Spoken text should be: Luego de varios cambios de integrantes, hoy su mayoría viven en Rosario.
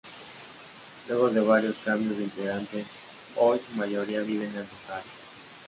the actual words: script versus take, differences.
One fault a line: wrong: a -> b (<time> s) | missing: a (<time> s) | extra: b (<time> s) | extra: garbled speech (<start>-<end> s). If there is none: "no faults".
no faults